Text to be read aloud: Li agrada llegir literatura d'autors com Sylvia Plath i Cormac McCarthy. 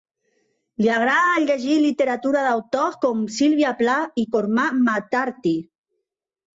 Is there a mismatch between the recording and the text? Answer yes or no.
no